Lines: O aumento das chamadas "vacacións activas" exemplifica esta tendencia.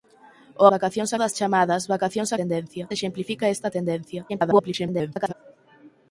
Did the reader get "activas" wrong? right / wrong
wrong